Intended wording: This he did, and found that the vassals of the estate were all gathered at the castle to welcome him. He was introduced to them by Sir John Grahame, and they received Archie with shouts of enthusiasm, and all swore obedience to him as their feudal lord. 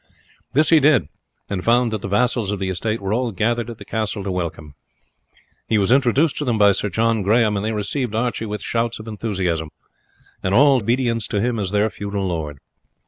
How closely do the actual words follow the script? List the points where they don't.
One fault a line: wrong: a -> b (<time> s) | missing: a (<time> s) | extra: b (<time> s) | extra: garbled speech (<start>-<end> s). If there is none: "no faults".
missing: swore (10.8 s)